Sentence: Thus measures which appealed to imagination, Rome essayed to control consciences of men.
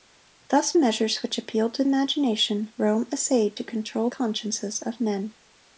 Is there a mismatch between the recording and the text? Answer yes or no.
no